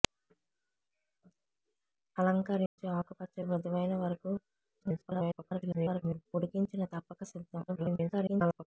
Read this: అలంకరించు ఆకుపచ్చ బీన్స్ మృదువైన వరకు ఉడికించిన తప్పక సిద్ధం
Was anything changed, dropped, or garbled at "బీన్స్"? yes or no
yes